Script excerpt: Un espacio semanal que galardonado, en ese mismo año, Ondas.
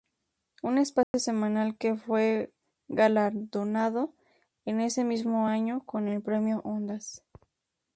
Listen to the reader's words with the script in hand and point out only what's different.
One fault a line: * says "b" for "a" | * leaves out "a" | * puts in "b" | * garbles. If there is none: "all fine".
* puts in "fue"
* puts in "con el Premio"